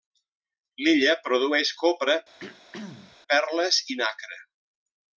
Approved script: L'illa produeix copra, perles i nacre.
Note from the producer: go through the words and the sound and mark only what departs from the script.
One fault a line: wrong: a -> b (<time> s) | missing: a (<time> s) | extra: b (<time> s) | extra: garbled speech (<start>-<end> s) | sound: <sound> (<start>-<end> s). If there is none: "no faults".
sound: throat clearing (2.4-3.2 s)